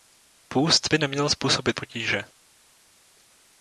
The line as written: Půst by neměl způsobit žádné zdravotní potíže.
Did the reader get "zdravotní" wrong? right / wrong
wrong